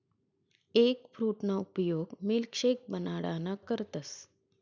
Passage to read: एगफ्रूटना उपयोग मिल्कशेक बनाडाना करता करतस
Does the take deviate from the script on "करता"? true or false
true